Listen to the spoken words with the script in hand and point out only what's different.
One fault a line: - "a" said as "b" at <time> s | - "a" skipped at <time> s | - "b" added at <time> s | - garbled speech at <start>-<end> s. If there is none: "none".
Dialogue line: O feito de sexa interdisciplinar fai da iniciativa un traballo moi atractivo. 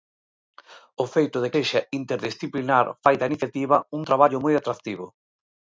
none